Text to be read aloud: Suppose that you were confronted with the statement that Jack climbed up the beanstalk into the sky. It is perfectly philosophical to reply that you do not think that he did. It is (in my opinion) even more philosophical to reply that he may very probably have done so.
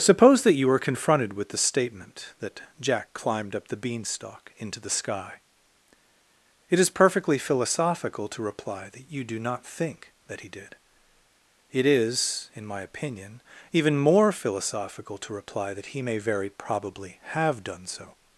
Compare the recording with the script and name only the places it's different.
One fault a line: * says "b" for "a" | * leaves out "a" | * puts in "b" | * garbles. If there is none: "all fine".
all fine